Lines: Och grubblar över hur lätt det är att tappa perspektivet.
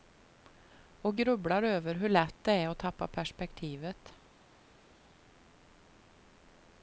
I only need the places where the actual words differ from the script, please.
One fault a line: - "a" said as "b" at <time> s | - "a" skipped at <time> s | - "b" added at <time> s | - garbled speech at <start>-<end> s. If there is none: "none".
none